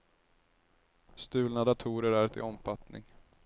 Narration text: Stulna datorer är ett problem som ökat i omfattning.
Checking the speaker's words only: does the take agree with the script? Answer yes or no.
no